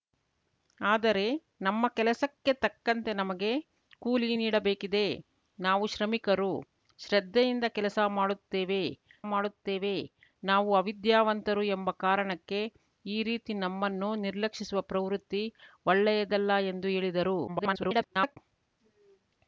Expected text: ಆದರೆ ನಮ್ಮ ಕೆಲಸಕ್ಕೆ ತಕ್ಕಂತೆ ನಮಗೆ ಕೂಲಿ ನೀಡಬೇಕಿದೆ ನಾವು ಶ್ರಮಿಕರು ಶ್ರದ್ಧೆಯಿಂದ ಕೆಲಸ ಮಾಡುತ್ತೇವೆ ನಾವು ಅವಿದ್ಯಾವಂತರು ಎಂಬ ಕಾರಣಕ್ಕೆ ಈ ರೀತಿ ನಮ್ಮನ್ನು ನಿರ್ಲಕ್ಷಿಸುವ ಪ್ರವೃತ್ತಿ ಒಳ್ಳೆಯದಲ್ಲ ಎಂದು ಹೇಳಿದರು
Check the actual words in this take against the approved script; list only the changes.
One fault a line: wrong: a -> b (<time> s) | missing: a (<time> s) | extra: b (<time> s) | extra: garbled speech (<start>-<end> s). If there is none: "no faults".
extra: ಮಾಡುತ್ತೇವೆ (9.3 s)
extra: garbled speech (17.5-18.4 s)